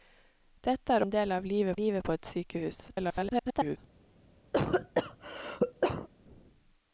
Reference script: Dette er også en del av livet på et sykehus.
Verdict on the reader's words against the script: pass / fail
fail